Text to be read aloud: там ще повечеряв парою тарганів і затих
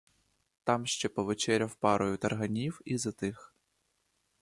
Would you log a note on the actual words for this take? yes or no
no